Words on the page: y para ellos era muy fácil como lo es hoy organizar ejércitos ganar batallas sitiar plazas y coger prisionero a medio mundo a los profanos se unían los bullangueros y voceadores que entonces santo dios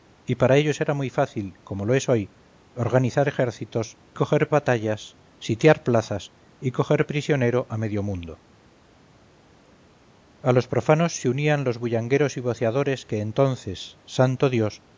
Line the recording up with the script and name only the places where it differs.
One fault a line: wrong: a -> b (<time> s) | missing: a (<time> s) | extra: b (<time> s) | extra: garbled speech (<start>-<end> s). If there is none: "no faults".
wrong: ganar -> coger (4.1 s)